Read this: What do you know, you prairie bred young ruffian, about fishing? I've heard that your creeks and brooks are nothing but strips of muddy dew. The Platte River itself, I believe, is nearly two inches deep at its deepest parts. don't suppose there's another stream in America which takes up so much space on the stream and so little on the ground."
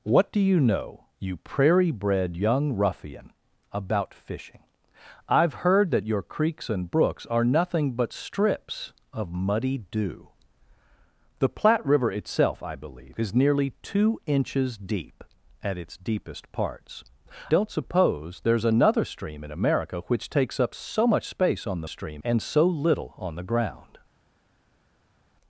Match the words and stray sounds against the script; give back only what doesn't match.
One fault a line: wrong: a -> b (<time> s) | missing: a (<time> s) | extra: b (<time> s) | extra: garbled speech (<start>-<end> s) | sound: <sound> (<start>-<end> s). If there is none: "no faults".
no faults